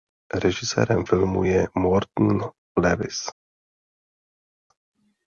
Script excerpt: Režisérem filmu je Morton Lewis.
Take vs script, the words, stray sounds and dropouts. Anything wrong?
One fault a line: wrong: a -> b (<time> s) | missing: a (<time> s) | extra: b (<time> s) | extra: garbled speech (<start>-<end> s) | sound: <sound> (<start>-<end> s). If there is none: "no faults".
no faults